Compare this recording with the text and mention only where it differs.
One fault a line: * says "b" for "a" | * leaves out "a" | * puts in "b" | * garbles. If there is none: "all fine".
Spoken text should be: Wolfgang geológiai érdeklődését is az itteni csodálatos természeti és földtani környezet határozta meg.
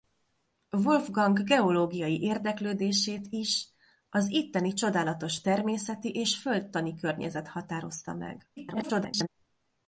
* garbles